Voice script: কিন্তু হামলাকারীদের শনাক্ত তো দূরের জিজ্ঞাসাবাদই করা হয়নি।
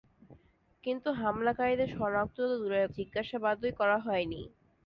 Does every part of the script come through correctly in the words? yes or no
yes